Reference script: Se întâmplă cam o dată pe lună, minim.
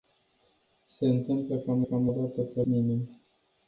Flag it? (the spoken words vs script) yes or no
yes